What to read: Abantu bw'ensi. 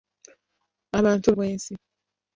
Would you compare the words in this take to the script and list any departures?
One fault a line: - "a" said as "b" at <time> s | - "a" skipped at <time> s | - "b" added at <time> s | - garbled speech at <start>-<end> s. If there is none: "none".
none